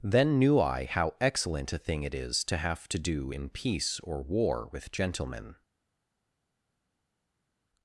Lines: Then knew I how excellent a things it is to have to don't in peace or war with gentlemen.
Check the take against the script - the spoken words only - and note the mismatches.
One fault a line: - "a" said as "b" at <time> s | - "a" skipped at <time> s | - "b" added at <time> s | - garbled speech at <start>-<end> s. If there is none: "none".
- "things" said as "thing" at 1.8 s
- "don't" said as "do" at 3.0 s